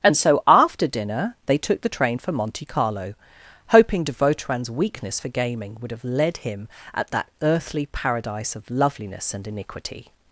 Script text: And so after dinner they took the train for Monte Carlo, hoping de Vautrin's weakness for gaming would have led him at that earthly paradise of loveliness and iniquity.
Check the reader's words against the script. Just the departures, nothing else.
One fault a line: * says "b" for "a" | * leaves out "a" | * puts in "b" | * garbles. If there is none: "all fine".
all fine